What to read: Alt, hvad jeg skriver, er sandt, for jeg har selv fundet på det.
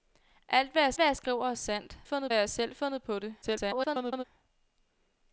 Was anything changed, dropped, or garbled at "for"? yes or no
yes